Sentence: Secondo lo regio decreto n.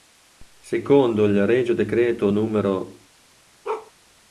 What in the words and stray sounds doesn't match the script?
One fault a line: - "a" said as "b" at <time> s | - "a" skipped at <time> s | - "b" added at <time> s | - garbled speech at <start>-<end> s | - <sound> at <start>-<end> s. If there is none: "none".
- "lo" said as "il" at 1.2 s
- bark at 3.6-3.9 s